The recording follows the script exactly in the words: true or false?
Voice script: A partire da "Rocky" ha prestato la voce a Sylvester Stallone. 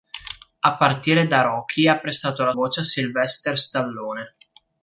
true